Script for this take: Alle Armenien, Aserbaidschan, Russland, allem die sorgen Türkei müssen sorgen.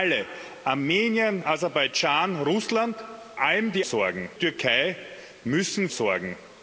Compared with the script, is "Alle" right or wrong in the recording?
right